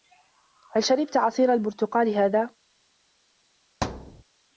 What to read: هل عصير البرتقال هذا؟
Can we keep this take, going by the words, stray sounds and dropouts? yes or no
no